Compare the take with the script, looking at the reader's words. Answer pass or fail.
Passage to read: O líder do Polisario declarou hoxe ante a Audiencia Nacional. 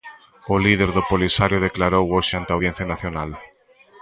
pass